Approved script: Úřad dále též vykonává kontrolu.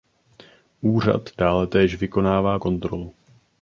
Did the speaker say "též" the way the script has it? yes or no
yes